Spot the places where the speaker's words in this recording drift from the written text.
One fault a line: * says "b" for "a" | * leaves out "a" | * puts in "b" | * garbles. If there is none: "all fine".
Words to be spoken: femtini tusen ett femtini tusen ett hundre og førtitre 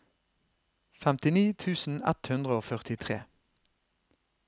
* leaves out "femtini tusen ett"